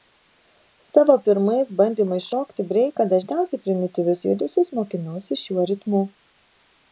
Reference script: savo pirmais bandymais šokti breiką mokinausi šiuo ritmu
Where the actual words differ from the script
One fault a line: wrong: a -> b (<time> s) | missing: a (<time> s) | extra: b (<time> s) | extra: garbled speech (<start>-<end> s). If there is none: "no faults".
extra: dažniausiai primityvius judesius (3.2 s)